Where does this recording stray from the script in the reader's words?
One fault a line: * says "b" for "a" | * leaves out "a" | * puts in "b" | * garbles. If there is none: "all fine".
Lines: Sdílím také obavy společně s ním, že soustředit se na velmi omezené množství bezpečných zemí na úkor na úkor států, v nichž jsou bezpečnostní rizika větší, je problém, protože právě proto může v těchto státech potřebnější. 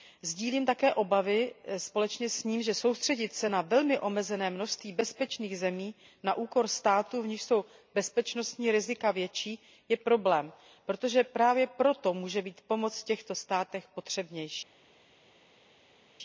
* leaves out "na úkor"
* puts in "být pomoc"